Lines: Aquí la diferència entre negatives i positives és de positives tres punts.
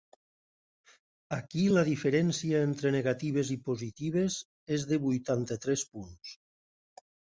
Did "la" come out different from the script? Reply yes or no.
no